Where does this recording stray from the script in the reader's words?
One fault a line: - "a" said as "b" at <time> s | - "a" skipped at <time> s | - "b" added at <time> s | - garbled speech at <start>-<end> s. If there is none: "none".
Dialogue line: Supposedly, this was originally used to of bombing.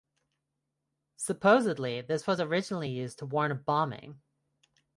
- "warn" added at 3.2 s